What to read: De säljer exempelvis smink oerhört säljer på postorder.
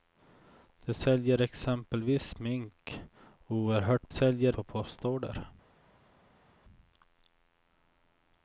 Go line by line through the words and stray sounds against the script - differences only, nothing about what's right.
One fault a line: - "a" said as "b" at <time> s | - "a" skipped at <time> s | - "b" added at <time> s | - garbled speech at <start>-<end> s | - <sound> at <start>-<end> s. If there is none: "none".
none